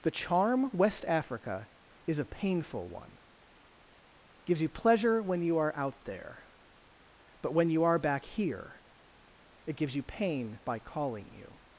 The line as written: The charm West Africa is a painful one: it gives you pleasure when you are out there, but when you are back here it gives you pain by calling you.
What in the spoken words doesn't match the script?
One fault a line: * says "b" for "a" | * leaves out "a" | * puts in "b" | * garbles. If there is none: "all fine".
all fine